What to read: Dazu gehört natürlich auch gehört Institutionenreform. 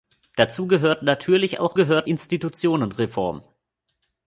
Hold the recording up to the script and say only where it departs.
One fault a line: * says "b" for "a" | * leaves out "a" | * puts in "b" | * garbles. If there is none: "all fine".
all fine